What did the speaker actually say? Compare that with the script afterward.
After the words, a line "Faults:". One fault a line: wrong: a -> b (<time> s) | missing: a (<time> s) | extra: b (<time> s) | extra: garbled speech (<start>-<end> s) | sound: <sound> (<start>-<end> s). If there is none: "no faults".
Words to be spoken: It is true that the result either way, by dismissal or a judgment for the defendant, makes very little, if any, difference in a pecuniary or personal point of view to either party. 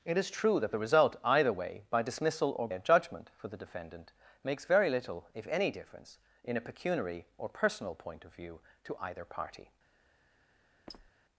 It is true that the result either way, by dismissal or a judgment for the defendant, makes very little, if any, difference in a pecuniary or personal point of view to either party.
Faults:
sound: squeak (10.9-11.1 s)